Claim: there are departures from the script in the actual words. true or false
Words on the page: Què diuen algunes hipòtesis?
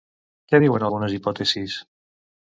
false